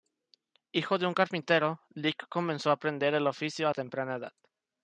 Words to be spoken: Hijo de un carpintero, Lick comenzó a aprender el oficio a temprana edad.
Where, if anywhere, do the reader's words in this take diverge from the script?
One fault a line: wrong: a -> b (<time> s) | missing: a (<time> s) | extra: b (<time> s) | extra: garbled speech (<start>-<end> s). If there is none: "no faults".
no faults